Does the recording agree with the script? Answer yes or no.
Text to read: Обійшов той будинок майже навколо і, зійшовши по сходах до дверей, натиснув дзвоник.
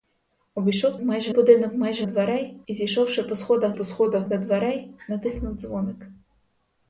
no